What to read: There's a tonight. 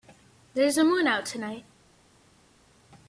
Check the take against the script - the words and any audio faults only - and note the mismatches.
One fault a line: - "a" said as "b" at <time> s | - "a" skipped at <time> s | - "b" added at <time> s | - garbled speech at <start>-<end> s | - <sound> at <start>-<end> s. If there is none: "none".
- "moon out" added at 0.8 s